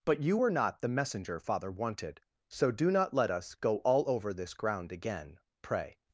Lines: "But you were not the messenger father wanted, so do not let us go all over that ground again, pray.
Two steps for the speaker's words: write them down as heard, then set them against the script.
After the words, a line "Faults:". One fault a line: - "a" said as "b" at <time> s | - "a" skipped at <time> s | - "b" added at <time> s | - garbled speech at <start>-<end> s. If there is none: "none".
"But you were not the messenger father wanted, so do not let us go all over this ground again, pray.
Faults:
- "that" said as "this" at 4.3 s